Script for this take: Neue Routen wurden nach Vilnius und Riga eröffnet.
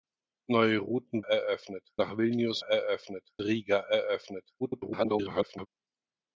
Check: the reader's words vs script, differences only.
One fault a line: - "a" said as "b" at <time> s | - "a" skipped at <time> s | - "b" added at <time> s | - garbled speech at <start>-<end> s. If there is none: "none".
- "wurden" said as "eröffnet" at 1.2 s
- "und" said as "eröffnet" at 2.6 s
- garbled speech at 4.6-5.7 s